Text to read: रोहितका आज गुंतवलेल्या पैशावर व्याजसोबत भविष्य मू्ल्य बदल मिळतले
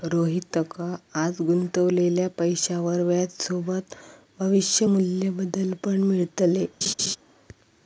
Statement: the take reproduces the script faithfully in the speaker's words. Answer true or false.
false